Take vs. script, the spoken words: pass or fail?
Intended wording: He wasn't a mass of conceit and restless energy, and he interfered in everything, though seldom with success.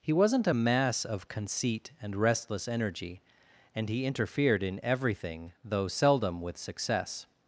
pass